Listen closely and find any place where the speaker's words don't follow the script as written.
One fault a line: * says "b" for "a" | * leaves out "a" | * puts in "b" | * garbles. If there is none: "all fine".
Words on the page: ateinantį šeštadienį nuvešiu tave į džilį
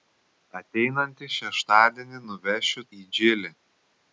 * leaves out "tave"